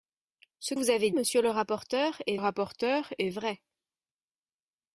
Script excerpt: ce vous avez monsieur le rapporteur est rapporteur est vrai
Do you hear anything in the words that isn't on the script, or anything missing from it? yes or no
no